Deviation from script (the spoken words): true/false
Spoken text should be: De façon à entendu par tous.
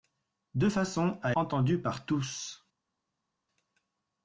false